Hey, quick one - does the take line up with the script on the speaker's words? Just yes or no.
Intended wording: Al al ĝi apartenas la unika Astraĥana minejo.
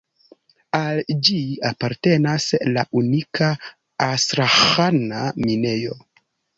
no